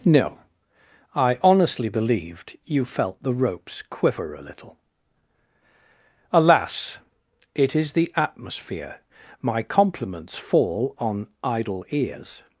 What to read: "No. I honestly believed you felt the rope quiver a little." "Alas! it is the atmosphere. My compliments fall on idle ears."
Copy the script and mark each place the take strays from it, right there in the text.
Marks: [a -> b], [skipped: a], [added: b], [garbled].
"No. I honestly believed you felt the [rope -> ropes] quiver a little." "Alas! it is the atmosphere. My compliments fall on idle ears."